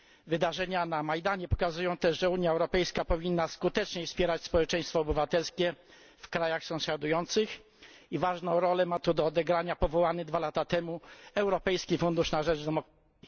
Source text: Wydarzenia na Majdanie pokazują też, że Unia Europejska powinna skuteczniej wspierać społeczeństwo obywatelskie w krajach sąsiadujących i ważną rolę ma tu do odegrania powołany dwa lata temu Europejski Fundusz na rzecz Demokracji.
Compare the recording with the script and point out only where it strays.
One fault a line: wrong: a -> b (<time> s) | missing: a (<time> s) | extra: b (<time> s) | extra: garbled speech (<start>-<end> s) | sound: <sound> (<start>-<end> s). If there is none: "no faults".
no faults